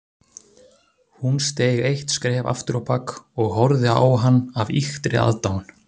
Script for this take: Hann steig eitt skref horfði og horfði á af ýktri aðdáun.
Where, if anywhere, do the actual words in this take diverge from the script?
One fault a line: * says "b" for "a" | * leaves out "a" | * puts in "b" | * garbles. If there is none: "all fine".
* says "Hún" for "Hann"
* says "afturábak" for "horfði"
* puts in "hann"